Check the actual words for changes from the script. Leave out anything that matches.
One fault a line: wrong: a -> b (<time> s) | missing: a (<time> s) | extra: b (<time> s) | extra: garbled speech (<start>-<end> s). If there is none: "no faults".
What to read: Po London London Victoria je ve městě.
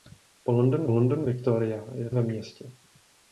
no faults